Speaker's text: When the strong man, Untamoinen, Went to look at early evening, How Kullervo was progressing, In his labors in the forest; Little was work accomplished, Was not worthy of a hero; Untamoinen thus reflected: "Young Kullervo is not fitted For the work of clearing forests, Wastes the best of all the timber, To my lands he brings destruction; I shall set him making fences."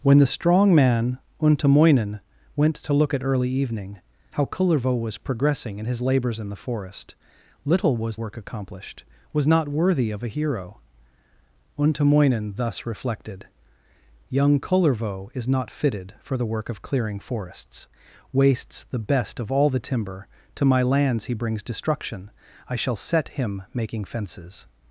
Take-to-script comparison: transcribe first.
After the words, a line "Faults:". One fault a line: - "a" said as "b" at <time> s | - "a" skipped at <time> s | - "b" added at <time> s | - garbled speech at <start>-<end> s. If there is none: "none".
When the strong man, Untamoinen, Went to look at early evening, How Kullervo was progressing, In his labors in the forest; Little was work accomplished, Was not worthy of a hero; Untamoinen thus reflected: "Young Kullervo is not fitted For the work of clearing forests, Wastes the best of all the timber, To my lands he brings destruction; I shall set him making fences."
Faults:
none